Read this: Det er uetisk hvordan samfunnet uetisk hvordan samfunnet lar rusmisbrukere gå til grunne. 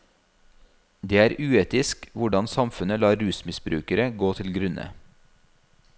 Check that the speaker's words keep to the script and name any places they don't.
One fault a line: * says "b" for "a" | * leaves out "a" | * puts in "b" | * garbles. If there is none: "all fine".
* leaves out "uetisk hvordan samfunnet"